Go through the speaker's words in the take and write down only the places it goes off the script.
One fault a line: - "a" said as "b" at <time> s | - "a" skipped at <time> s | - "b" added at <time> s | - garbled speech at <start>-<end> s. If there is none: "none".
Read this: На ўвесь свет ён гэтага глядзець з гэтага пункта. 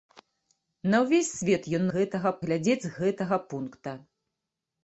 none